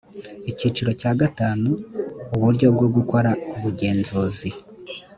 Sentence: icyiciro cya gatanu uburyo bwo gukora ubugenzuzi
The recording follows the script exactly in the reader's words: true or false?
true